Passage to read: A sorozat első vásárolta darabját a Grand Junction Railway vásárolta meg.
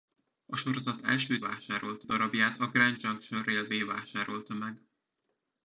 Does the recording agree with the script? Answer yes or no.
yes